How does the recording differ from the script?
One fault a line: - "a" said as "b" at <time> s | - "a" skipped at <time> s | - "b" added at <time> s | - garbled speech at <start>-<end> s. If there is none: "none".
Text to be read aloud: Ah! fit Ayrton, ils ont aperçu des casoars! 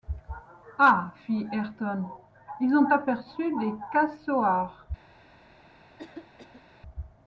none